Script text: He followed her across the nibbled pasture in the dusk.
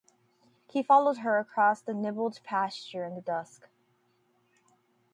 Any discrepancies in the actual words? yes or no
no